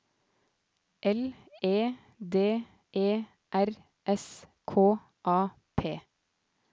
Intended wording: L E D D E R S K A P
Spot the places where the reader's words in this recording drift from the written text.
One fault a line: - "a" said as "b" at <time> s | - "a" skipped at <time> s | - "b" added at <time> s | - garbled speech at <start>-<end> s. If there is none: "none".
- "D" skipped at 2.6 s